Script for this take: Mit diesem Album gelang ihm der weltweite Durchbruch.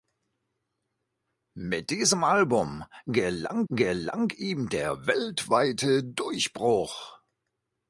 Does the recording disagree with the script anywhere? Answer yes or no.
yes